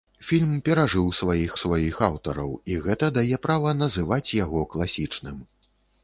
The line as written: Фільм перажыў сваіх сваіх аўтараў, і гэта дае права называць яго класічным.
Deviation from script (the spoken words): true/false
false